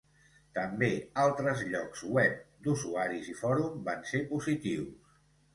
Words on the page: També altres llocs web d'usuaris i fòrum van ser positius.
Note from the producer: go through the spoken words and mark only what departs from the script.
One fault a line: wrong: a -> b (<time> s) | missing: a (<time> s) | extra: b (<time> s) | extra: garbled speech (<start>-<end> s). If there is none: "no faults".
no faults